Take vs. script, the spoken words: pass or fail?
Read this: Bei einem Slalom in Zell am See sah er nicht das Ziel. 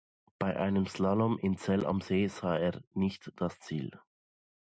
pass